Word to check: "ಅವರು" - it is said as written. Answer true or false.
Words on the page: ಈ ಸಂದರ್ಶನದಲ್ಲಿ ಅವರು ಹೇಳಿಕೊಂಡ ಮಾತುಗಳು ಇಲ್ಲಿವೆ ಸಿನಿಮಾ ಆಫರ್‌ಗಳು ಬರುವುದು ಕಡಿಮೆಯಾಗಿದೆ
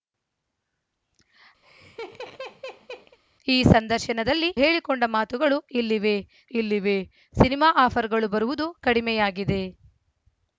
false